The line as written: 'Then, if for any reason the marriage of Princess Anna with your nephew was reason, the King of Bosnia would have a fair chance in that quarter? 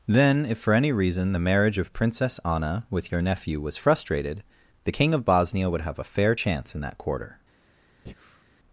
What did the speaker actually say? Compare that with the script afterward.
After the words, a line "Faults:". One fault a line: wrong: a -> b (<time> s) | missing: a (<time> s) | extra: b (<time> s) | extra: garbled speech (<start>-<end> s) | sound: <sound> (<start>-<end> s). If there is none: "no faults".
'Then, if for any reason the marriage of Princess Anna with your nephew was frustrated, the King of Bosnia would have a fair chance in that quarter?
Faults:
wrong: reason -> frustrated (3.8 s)
sound: breath (8.1-8.4 s)